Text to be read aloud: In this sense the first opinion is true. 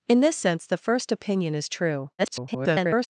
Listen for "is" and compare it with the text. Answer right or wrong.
right